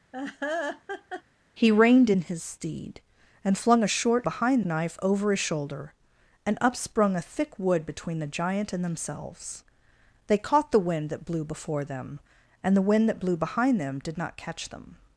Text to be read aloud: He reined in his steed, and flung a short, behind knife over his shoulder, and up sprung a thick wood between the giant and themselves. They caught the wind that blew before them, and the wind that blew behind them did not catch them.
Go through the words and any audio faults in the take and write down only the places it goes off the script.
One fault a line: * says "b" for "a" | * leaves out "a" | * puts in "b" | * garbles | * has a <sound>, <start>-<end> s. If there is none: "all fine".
* has a laugh, 0.1-1.2 s